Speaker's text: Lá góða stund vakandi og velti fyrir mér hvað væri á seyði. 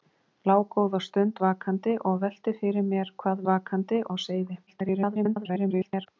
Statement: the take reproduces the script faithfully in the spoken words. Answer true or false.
false